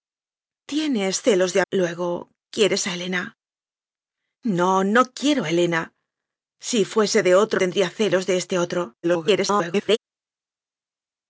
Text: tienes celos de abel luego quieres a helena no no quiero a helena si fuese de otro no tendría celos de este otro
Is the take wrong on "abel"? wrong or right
wrong